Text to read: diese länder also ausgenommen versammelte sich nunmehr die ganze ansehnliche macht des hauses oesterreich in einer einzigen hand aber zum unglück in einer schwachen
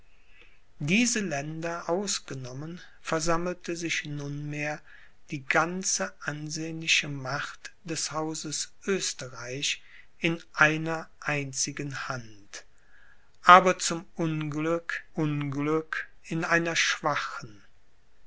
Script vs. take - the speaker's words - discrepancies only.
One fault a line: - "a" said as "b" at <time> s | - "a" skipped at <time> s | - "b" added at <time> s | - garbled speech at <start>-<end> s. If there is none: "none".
- "also" skipped at 1.8 s
- "unglück" added at 15.1 s